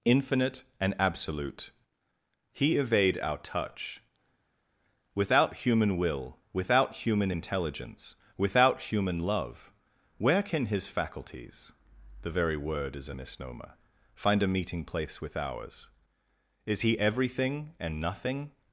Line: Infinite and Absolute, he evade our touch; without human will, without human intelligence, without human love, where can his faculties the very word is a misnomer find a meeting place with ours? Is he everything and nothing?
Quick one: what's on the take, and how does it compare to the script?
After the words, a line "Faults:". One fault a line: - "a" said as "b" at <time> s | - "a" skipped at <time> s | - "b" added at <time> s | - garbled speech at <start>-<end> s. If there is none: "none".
Infinite and Absolute, he evade our touch; without human will, without human intelligence, without human love, where can his faculties the very word is a misnomer find a meeting place with ours? Is he everything and nothing?
Faults:
none